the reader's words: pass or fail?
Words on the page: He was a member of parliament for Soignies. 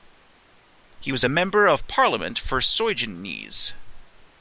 pass